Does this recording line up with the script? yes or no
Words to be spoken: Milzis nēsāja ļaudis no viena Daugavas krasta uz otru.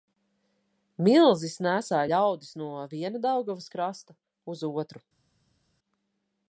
yes